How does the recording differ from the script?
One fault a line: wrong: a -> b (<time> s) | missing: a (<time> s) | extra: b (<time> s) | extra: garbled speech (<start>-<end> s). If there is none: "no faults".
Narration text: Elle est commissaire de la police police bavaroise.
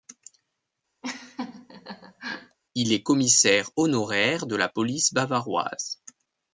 wrong: Elle -> Il (2.8 s)
extra: honoraire (3.8 s)
missing: police (5.1 s)